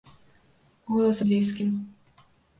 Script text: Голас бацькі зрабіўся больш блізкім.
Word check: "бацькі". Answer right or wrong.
wrong